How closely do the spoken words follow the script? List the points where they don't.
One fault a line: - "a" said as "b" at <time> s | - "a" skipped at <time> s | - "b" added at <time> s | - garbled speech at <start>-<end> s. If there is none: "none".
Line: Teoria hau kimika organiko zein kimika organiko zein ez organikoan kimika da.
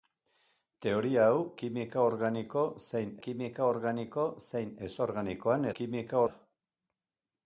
none